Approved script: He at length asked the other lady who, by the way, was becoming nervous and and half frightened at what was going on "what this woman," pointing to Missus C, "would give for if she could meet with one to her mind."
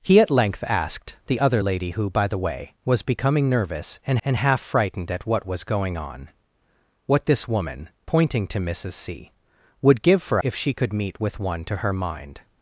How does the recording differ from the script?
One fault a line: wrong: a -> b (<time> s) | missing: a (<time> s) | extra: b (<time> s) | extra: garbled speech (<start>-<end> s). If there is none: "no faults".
no faults